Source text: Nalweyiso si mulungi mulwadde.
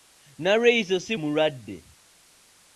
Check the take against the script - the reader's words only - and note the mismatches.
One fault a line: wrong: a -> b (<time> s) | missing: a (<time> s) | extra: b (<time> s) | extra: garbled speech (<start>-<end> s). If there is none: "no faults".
missing: mulungi (1.1 s)